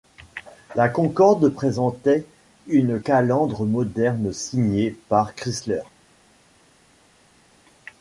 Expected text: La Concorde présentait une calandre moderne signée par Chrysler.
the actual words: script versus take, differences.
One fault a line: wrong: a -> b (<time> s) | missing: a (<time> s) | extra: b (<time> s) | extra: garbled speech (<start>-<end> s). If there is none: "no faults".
no faults